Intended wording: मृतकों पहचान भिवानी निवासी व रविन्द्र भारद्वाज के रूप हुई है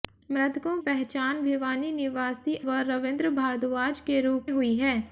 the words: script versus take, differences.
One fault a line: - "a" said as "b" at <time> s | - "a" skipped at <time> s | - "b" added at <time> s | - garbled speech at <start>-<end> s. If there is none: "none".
none